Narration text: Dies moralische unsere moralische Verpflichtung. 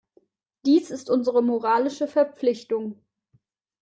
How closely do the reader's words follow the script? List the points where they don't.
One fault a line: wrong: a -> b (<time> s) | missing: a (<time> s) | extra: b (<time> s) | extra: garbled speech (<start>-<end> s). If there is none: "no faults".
wrong: moralische -> ist (0.9 s)